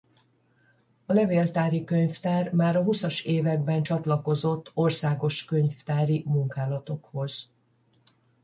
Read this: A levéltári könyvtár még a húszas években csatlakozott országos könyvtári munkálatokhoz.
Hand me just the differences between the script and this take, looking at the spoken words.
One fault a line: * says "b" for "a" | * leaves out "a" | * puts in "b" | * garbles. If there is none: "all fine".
* says "már" for "még"